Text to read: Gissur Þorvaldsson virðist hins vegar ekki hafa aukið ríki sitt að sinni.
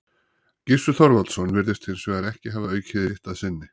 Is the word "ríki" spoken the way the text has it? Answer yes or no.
no